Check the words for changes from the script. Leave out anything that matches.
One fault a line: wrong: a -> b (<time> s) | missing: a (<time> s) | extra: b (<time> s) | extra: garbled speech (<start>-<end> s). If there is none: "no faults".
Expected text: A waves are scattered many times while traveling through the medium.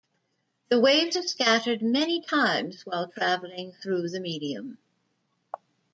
wrong: A -> The (0.7 s)